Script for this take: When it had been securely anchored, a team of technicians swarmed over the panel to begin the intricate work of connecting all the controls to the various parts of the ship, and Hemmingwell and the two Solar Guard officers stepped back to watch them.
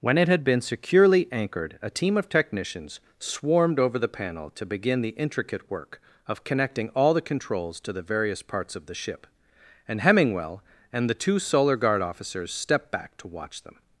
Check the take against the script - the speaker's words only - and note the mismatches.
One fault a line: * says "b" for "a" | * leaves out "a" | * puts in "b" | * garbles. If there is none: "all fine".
all fine